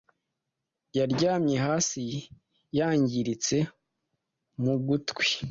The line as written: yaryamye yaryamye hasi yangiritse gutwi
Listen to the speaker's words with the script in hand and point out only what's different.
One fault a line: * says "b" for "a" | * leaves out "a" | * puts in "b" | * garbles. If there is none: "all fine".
* leaves out "yaryamye"
* puts in "mu"